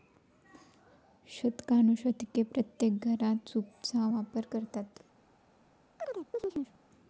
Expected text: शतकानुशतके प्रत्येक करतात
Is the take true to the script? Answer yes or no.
no